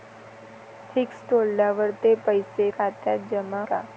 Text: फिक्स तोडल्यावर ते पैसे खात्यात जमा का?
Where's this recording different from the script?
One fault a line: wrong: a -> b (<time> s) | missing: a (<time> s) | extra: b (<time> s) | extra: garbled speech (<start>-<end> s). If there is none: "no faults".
no faults